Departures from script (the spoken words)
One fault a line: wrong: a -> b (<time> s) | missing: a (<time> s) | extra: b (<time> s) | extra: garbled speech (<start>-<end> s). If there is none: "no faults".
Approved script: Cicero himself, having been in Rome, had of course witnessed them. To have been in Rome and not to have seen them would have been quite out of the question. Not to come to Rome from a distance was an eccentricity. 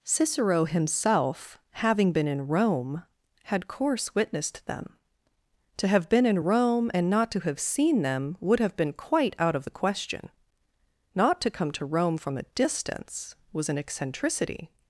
missing: of (3.7 s)